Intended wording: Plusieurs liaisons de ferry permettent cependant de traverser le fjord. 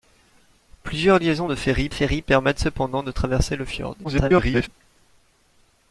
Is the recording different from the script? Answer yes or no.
yes